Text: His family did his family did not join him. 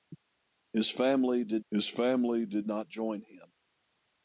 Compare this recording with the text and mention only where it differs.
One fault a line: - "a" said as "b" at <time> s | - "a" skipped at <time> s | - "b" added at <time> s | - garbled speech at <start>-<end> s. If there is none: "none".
none